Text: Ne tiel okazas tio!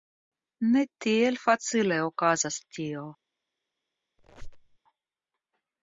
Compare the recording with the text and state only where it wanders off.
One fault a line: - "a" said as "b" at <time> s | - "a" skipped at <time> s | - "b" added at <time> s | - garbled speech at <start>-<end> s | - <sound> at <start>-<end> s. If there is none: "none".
- "facile" added at 1.4 s
- squeak at 4.2-4.8 s